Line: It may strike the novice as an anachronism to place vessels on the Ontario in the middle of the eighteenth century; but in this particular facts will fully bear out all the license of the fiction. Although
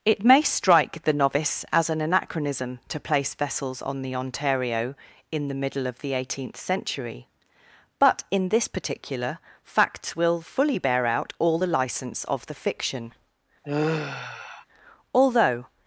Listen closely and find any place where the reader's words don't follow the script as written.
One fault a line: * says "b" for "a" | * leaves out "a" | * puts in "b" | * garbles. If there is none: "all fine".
all fine